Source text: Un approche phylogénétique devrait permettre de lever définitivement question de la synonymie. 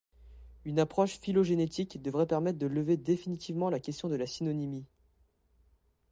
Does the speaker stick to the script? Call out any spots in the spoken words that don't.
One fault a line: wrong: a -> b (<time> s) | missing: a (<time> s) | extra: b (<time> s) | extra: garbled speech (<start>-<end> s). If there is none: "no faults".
wrong: Un -> Une (0.7 s)
extra: la (3.7 s)